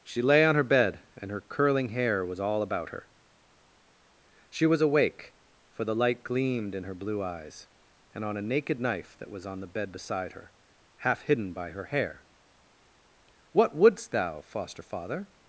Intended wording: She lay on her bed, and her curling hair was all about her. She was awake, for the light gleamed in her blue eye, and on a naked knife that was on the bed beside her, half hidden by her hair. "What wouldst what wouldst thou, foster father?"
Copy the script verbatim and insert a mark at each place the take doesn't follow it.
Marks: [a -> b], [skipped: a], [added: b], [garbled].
She lay on her bed, and her curling hair was all about her. She was awake, for the light gleamed in her blue [eye, -> eyes] and on a naked knife that was on the bed beside her, half hidden by her hair. "What wouldst [skipped: what wouldst] thou, foster father?"